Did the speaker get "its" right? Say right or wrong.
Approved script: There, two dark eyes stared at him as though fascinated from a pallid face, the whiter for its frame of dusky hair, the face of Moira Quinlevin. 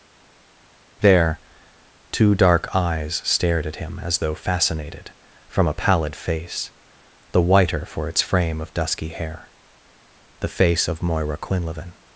right